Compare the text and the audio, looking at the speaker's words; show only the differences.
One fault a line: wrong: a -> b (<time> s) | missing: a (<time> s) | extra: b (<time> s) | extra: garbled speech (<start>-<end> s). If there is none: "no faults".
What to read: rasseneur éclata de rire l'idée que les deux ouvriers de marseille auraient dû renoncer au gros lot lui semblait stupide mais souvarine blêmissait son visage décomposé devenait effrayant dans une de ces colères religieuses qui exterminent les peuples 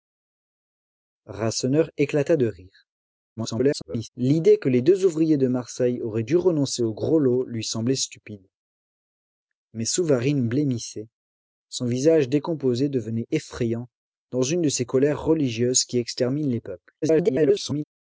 extra: garbled speech (3.4-4.1 s)
extra: garbled speech (17.0-17.8 s)